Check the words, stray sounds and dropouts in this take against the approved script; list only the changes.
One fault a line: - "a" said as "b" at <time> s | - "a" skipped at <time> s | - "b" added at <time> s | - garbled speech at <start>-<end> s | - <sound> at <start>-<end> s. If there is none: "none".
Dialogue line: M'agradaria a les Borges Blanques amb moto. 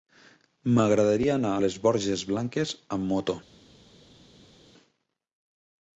- "anar" added at 1.3 s